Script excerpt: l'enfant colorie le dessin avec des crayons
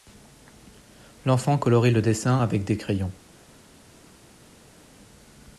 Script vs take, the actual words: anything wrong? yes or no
no